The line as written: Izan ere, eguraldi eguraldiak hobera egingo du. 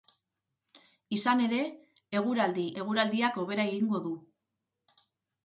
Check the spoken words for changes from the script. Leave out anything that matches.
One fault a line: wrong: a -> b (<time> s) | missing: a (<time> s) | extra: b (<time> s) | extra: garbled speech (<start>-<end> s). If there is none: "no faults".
no faults